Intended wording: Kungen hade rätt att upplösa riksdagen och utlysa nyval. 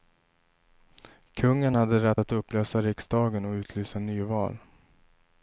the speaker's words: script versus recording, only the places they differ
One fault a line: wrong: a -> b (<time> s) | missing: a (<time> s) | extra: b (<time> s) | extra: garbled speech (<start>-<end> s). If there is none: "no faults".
no faults